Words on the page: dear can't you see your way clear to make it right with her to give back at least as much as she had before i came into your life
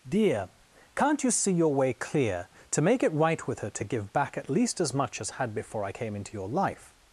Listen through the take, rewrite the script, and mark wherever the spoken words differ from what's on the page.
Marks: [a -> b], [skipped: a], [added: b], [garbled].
dear can't you see your way clear to make it right with her to give back at least as much as [skipped: she] had before i came into your life